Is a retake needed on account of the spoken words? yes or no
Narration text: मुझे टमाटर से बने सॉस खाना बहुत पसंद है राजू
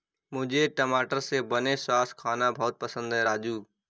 no